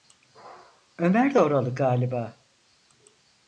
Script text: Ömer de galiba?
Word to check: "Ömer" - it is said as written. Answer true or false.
true